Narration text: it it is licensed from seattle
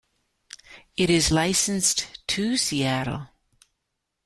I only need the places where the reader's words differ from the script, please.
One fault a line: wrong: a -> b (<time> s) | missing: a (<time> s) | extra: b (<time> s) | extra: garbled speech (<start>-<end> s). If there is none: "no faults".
missing: it (1.1 s)
wrong: from -> to (2.3 s)